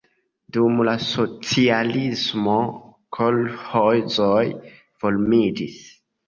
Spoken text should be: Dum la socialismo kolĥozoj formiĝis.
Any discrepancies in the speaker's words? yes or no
no